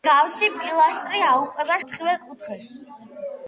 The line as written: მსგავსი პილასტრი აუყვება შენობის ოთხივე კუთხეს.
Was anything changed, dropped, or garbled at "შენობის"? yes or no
yes